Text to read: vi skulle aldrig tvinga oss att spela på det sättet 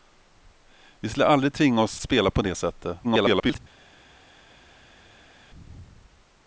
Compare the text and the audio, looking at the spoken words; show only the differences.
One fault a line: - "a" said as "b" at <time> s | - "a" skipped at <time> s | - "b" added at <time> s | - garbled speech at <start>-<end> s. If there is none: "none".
- "att" skipped at 2.0 s
- garbled speech at 3.0-3.6 s